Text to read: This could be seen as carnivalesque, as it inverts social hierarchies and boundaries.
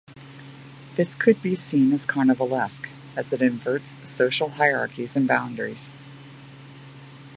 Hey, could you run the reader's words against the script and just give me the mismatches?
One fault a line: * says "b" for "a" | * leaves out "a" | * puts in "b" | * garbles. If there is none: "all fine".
all fine